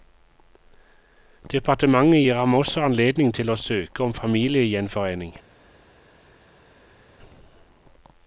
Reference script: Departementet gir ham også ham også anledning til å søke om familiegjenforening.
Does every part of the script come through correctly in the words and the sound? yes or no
no